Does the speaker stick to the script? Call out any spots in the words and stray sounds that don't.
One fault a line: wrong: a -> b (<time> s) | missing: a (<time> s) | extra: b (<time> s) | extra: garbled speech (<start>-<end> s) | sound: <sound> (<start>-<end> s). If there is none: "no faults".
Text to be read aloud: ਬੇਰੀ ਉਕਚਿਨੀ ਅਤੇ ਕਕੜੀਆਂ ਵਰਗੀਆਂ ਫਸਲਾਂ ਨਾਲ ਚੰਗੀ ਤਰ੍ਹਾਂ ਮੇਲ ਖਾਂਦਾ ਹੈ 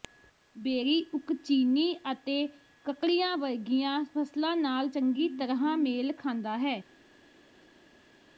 no faults